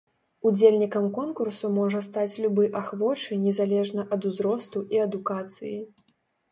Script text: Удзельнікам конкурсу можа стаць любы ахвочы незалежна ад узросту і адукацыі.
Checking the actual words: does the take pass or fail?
pass